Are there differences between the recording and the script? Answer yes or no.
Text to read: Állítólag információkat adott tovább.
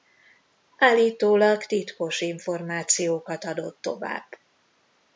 yes